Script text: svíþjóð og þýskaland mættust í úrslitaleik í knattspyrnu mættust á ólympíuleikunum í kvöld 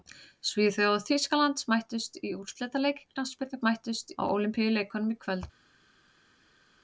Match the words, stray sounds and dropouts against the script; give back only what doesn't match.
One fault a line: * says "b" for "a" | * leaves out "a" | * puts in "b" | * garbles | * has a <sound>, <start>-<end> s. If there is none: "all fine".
all fine